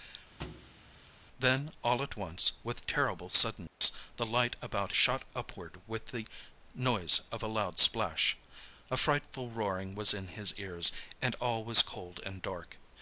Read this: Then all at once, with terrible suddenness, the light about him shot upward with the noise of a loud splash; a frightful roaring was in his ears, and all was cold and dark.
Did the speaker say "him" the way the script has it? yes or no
no